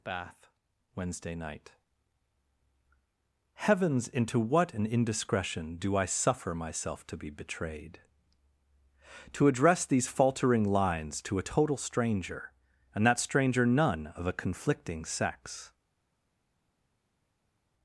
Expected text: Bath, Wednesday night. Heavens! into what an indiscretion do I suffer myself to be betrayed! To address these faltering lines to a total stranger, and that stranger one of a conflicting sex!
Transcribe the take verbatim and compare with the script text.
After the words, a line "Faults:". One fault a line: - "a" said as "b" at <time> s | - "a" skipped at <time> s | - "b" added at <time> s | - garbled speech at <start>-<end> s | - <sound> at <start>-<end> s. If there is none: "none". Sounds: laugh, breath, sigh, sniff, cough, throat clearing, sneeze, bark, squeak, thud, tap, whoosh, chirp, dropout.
Bath, Wednesday night. Heavens! into what an indiscretion do I suffer myself to be betrayed! To address these faltering lines to a total stranger, and that stranger none of a conflicting sex!
Faults:
- "one" said as "none" at 13.6 s